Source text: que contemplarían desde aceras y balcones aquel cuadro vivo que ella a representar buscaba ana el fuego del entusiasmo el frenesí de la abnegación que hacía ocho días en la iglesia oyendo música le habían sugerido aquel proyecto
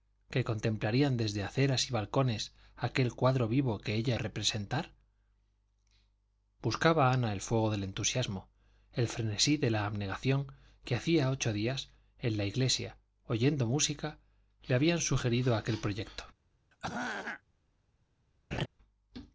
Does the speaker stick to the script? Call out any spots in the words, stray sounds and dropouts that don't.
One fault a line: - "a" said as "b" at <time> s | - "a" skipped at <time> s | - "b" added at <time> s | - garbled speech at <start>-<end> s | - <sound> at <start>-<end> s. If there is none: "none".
- throat clearing at 16.7-17.4 s
- laugh at 18.5-18.7 s